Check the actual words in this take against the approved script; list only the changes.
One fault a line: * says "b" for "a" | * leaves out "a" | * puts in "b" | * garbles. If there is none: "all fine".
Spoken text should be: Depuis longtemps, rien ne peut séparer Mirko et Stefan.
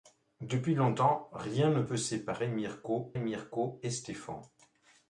* puts in "Mirko"